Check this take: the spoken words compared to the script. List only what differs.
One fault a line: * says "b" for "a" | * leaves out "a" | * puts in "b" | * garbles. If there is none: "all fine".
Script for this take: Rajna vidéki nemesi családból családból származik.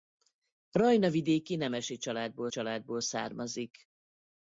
all fine